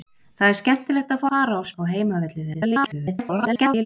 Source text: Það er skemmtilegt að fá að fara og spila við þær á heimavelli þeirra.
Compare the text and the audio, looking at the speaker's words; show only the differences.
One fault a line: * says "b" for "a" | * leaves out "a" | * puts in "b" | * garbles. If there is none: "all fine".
* leaves out "að"
* leaves out "spila við þær"
* garbles